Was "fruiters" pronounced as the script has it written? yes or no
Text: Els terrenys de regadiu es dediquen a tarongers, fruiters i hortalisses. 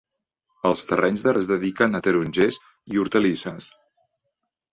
no